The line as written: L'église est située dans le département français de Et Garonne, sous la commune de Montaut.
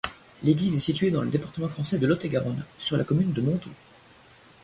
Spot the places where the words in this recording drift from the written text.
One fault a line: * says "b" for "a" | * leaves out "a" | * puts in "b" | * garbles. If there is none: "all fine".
* puts in "Lot"
* says "sur" for "sous"